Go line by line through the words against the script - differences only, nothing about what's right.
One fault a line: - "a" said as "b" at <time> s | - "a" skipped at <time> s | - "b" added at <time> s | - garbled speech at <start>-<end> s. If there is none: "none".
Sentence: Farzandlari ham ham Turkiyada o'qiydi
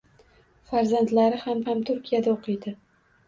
none